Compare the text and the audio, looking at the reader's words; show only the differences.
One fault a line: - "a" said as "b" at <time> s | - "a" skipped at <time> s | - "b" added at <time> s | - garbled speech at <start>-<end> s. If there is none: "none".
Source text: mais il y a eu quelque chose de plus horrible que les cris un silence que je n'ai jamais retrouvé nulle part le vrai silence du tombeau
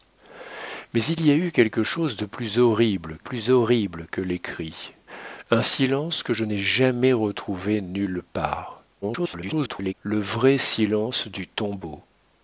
- "plus horrible" added at 3.2 s
- garbled speech at 9.0-9.9 s